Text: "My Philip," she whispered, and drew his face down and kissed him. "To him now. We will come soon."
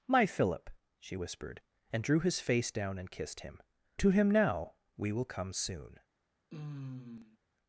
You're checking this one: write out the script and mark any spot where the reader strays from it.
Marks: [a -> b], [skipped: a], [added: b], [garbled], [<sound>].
"My Philip," she whispered, and drew his face down and kissed him. "To him now. We will come soon." [sigh]